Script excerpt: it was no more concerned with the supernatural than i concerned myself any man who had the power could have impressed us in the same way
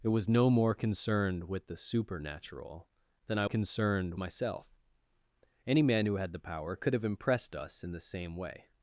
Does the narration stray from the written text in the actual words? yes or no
no